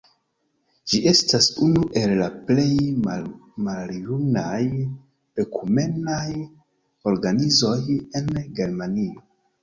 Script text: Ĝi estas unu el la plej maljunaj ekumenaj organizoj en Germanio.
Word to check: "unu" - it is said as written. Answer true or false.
true